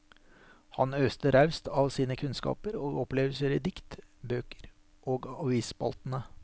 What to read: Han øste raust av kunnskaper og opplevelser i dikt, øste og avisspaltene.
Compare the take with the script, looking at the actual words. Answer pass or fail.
fail